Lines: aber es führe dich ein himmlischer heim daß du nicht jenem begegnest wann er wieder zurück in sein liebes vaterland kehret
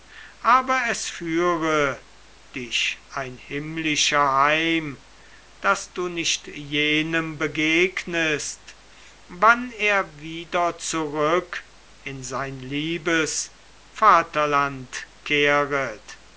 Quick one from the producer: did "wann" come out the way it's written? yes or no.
yes